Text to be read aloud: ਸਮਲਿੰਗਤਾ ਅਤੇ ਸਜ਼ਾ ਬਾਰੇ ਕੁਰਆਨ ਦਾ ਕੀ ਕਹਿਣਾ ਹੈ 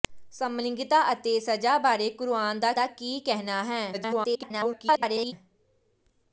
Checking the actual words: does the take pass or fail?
fail